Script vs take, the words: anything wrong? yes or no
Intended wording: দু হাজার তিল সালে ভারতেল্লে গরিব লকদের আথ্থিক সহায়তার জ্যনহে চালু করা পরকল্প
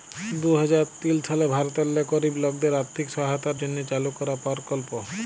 no